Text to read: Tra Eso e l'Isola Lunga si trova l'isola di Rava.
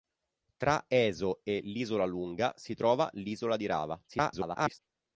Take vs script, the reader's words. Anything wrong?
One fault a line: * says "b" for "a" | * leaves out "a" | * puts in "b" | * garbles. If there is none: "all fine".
* garbles